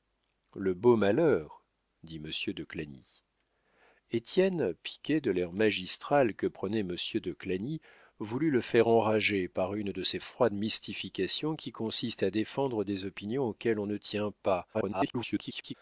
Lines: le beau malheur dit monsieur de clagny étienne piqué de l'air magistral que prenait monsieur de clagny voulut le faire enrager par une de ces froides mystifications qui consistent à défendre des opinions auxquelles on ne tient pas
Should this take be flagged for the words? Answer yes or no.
yes